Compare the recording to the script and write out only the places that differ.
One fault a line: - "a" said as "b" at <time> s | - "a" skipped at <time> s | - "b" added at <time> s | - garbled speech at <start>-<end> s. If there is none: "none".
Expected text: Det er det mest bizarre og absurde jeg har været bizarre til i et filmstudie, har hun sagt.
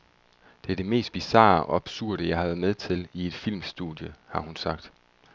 - "bizarre" said as "med" at 2.6 s